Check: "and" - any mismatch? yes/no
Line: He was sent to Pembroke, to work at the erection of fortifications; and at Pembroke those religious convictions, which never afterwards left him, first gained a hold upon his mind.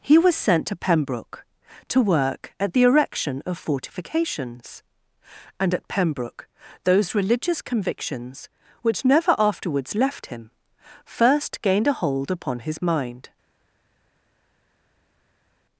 no